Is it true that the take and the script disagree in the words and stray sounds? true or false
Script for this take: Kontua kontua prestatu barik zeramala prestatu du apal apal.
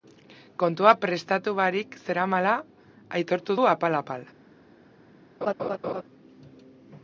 true